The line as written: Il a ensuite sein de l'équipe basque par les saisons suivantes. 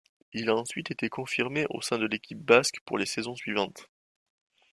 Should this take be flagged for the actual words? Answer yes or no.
yes